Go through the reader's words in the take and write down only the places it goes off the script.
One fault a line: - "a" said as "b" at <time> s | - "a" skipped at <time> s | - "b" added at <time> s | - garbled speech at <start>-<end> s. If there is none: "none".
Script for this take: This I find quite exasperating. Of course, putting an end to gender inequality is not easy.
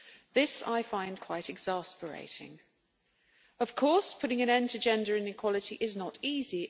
none